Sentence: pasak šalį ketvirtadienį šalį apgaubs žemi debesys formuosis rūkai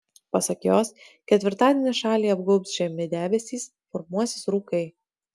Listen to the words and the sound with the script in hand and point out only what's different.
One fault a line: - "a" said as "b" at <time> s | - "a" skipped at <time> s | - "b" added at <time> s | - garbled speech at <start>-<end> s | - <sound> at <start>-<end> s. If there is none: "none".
- "šalį" said as "jos" at 0.7 s